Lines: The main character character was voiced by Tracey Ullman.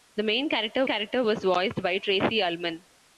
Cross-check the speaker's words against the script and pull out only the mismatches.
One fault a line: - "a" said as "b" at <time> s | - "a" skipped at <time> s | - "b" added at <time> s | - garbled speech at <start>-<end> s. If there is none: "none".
none